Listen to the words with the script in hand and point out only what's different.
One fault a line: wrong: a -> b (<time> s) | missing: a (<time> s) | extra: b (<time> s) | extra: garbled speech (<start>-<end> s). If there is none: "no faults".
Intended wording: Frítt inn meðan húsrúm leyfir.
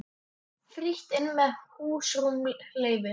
no faults